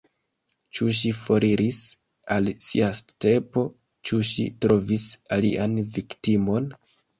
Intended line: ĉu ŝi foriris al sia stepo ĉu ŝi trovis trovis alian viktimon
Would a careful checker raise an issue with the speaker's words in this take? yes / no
yes